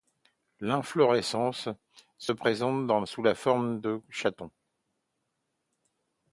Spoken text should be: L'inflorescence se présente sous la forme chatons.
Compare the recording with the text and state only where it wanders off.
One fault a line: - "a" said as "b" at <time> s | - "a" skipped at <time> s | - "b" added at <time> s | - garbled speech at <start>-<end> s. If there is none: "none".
- "de" added at 3.8 s